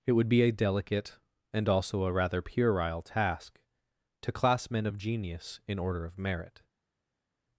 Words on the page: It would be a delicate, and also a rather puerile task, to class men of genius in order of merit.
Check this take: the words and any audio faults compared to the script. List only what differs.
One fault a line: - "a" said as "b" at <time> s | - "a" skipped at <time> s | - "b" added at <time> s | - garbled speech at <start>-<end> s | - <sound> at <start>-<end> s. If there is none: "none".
none